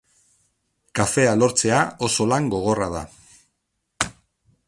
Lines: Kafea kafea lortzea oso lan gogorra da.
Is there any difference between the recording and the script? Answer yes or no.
yes